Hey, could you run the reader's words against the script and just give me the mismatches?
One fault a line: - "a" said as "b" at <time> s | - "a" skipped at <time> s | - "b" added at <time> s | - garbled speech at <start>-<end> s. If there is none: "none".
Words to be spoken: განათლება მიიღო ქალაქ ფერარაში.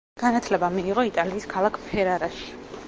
- "იტალიის" added at 1.1 s